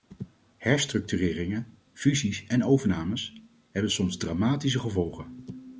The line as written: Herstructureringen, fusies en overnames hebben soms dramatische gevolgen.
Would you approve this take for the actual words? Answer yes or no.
yes